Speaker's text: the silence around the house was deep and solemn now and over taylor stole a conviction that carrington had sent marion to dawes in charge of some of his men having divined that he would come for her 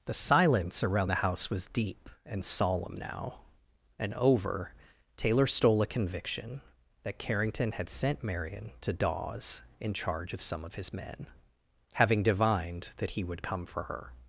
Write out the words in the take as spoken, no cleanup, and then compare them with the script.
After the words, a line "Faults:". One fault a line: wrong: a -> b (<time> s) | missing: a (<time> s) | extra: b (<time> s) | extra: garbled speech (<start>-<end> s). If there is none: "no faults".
the silence around the house was deep and solemn now and over taylor stole a conviction that carrington had sent marion to dawes in charge of some of his men having divined that he would come for her
Faults:
no faults